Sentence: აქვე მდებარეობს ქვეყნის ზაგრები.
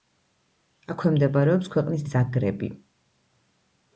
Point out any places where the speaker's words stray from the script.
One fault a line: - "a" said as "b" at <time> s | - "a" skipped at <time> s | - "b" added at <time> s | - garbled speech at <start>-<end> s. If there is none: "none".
none